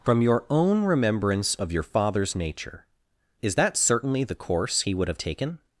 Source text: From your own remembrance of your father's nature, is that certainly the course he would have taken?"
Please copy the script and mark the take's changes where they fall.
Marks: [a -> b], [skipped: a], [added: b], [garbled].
From your own remembrance of your father's nature, is that certainly the course he would have taken?"